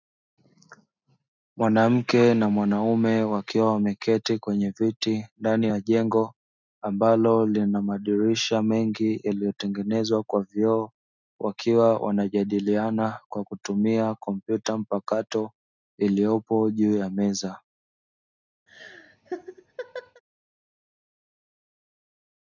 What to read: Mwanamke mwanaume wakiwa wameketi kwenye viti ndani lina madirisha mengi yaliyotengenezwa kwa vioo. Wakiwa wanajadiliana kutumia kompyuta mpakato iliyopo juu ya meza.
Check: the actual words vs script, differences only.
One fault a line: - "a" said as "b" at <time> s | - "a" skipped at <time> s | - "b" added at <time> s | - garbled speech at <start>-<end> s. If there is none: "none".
- "na" added at 2.3 s
- "ya jengo ambalo" added at 5.7 s
- "kwa" added at 13.3 s